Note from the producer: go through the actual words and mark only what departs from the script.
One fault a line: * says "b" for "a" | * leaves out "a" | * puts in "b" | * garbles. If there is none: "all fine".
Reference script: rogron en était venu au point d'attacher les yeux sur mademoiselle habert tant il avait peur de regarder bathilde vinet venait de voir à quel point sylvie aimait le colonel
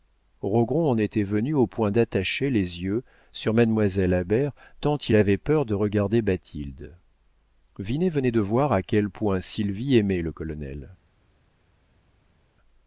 all fine